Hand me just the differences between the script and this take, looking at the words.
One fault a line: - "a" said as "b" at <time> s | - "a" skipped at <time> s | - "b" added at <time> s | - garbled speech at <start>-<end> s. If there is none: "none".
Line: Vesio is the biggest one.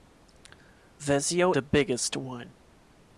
- "is" skipped at 1.6 s